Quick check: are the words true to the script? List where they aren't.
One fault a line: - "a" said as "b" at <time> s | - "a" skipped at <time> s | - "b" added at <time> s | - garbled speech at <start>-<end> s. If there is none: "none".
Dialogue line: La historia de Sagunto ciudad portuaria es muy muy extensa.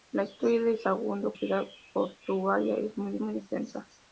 none